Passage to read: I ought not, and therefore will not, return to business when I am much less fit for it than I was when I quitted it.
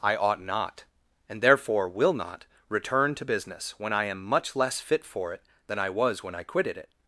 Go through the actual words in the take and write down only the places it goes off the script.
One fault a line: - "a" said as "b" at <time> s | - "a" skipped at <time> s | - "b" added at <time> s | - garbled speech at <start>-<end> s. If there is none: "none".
none